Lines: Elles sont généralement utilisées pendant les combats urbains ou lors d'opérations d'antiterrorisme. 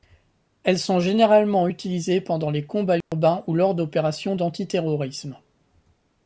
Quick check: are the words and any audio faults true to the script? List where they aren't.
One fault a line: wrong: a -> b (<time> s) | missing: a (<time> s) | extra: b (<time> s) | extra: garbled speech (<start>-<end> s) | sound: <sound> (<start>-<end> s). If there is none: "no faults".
sound: dropout (3.0-3.1 s)